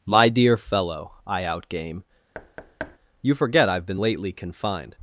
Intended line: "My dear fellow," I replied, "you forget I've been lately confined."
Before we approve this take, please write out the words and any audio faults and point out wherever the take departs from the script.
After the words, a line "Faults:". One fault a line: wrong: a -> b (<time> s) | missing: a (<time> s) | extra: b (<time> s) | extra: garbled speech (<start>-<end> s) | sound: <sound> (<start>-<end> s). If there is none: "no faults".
"My dear fellow," I outgame, "you forget I've been lately confined."
Faults:
wrong: replied -> outgame (1.4 s)
sound: thud (2.3-3.0 s)